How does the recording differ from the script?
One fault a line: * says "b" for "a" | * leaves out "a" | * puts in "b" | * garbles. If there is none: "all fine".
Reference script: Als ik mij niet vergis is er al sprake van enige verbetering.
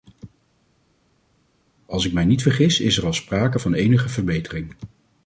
all fine